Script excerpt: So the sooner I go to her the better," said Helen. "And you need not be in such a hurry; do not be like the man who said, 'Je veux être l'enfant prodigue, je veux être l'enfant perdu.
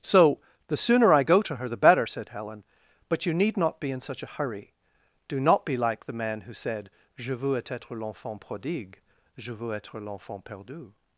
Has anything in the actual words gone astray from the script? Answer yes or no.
yes